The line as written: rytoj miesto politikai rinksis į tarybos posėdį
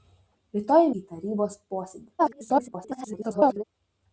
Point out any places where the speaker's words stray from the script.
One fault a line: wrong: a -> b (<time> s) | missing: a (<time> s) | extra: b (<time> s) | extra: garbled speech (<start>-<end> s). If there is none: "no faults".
missing: miesto politikai rinksis (0.9 s)
extra: garbled speech (2.2-3.6 s)